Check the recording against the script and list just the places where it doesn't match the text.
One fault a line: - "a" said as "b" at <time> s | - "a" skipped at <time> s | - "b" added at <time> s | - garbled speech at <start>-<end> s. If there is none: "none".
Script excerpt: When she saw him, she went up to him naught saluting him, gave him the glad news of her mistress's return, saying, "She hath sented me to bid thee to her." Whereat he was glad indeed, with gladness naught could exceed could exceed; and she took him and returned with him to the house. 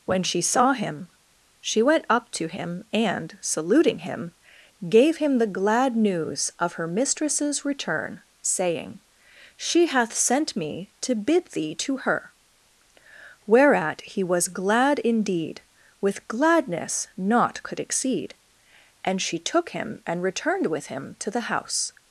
- "naught" said as "and" at 2.9 s
- "sented" said as "sent" at 10.1 s
- "could exceed" skipped at 18.3 s